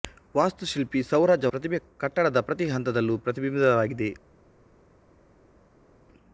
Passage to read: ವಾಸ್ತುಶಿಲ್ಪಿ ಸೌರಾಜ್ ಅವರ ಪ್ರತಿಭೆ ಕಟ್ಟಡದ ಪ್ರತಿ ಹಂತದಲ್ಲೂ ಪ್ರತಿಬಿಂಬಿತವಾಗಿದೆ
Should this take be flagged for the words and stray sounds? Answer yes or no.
yes